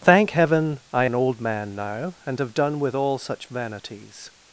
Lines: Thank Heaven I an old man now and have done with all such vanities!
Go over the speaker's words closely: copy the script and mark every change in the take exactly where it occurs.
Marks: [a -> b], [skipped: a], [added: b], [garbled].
Thank Heaven I an old man now and have done with all such vanities!